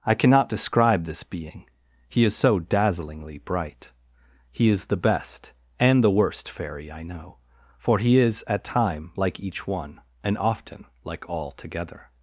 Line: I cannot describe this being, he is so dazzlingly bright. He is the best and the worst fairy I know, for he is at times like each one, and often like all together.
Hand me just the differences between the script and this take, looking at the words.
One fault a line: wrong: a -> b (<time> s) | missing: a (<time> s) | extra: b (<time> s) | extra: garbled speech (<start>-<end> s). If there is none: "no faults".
wrong: times -> time (8.6 s)